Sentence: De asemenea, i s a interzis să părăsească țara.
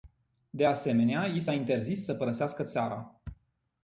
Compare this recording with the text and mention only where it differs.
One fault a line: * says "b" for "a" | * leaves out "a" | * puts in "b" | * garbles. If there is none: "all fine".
all fine